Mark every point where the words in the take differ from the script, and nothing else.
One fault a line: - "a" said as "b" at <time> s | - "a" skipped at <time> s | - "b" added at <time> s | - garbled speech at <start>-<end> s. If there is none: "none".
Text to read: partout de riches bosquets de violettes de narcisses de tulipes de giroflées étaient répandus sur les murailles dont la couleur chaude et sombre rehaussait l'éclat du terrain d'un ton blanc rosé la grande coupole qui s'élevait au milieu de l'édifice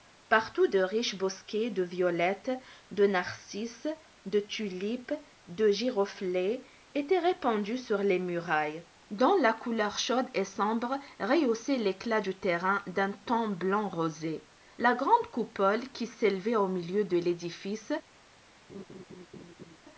none